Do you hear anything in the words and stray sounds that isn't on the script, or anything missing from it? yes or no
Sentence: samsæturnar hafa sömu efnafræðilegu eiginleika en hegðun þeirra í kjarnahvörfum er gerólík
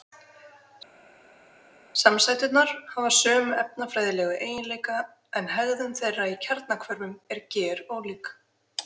no